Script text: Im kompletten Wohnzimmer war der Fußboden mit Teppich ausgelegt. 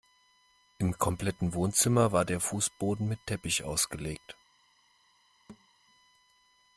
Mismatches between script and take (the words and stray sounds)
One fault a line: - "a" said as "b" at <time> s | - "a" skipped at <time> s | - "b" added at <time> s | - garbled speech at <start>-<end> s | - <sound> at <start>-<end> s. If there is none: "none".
- thud at 5.5-5.7 s